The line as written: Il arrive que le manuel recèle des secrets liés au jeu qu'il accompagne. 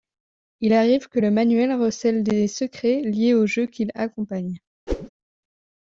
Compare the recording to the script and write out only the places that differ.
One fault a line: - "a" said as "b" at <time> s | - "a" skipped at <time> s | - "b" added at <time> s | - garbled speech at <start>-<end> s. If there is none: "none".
none